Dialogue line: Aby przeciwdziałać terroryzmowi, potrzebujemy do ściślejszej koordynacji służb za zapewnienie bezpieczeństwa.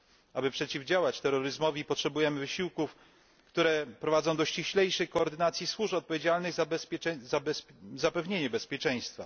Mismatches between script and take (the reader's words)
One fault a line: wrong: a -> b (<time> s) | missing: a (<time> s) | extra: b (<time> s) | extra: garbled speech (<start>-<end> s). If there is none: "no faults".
extra: wysiłków które prowadzą (2.4 s)
extra: odpowiedzialnych (5.9 s)